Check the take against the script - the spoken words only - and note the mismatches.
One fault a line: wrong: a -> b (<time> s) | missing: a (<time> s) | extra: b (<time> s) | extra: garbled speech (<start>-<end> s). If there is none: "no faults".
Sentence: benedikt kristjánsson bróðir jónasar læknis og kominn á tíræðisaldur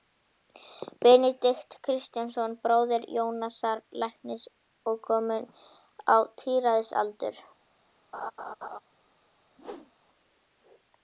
no faults